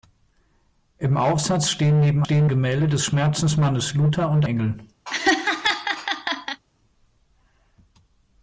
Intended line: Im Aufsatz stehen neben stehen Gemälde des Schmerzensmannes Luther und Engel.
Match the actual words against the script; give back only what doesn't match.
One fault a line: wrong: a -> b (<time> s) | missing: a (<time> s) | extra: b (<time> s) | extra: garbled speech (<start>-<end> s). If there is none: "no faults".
no faults